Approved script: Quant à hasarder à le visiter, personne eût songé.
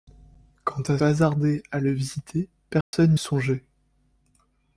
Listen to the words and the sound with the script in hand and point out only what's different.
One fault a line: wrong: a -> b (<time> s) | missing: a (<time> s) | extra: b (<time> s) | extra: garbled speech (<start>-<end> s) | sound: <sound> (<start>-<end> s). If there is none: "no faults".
sound: dropout (2.8-2.9 s)